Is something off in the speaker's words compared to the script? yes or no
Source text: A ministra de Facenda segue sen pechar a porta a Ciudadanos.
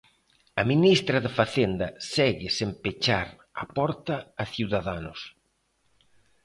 no